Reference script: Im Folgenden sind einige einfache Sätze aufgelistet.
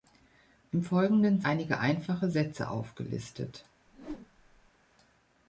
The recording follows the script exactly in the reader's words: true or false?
false